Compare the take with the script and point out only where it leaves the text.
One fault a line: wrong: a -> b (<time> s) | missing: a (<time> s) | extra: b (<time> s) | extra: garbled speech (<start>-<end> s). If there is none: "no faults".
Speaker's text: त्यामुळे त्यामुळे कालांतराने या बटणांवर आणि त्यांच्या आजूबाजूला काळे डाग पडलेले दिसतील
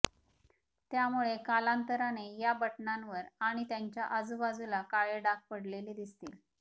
missing: त्यामुळे (1.4 s)